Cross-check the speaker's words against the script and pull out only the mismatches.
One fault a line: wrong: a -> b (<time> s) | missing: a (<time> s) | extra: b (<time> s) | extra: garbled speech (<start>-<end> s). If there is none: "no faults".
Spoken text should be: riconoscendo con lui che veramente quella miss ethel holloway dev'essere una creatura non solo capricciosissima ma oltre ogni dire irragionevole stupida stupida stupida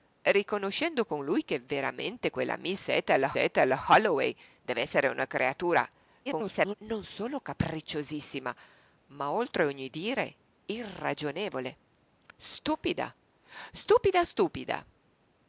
extra: ethel (3.3 s)
extra: garbled speech (6.3-6.7 s)